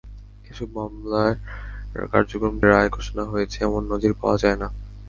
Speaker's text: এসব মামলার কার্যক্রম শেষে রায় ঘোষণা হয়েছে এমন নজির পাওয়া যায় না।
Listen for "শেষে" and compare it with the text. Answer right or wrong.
wrong